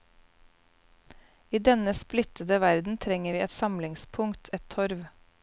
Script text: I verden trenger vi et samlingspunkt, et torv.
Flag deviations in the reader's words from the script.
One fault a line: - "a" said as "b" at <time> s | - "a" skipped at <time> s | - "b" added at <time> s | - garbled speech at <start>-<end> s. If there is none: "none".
- "denne splittede" added at 1.6 s